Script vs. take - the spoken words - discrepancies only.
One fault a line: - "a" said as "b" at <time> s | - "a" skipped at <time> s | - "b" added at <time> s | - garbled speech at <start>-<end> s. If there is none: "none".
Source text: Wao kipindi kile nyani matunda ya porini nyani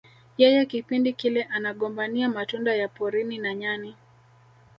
- "Wao" said as "Yeye" at 0.4 s
- "nyani" said as "anagombania" at 1.4 s
- "na" added at 3.4 s